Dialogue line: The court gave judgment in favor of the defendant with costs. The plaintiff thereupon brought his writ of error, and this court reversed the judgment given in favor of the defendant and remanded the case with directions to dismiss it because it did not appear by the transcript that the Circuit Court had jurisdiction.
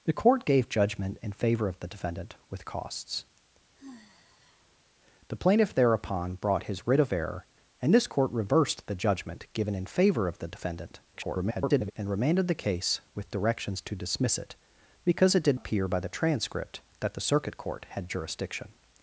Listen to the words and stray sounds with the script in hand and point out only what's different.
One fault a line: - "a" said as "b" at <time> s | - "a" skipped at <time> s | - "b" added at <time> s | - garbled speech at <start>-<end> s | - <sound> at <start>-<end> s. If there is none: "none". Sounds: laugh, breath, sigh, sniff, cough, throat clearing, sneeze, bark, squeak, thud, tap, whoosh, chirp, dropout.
- sigh at 3.7-4.8 s
- garbled speech at 11.1-11.9 s
- "not" skipped at 15.6 s